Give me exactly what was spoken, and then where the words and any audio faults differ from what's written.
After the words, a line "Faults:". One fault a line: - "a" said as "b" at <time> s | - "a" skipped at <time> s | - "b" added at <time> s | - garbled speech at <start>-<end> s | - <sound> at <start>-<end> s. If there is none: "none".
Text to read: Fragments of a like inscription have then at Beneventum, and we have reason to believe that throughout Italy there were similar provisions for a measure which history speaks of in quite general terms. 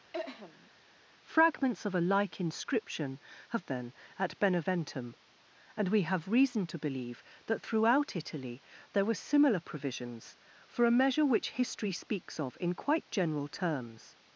Fragments of a like inscription have then at Beneventum, and we have reason to believe that throughout Italy there were similar provisions for a measure which history speaks of in quite general terms.
Faults:
- throat clearing at 0.1-0.7 s